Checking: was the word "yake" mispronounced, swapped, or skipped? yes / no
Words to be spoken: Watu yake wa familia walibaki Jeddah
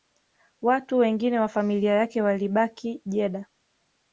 yes